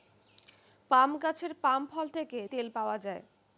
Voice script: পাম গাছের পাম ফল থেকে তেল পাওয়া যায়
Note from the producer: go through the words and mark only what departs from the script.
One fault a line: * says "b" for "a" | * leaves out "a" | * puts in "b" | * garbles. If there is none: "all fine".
all fine